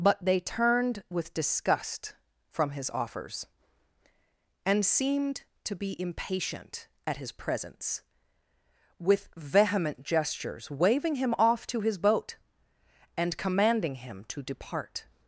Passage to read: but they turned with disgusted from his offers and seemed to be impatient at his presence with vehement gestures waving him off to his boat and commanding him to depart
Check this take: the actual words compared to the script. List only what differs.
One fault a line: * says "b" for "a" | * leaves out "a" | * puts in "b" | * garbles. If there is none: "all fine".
* says "disgust" for "disgusted"